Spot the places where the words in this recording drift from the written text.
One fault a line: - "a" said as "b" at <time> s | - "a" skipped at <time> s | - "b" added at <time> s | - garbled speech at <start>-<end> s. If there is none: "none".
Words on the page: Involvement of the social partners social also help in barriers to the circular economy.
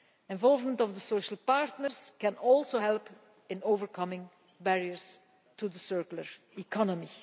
- "social" said as "can" at 2.2 s
- "overcoming" added at 3.6 s